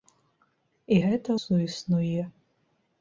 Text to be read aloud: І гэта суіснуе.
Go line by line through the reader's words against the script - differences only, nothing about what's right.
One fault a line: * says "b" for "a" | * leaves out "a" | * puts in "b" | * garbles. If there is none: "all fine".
all fine